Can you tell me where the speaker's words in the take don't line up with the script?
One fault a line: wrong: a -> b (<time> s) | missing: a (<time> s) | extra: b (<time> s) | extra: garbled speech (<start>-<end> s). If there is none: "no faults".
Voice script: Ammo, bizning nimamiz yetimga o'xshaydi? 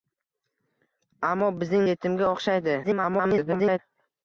missing: nimamiz (1.9 s)
extra: garbled speech (2.8-3.8 s)